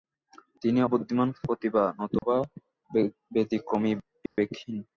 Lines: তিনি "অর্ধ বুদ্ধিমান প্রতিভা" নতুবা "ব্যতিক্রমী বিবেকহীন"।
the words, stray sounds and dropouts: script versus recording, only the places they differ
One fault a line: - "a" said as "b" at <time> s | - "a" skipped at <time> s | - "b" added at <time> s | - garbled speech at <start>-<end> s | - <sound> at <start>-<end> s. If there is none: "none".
- "অর্ধ" skipped at 0.8 s
- dropout at 2.2-2.2 s
- dropout at 4.3-4.4 s